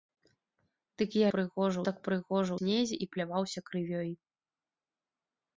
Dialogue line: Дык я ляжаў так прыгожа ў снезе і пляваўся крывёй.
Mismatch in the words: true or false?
true